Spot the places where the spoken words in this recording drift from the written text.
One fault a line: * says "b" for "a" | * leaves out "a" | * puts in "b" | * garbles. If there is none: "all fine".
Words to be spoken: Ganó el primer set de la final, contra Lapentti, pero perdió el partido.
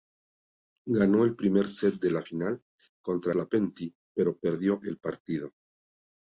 all fine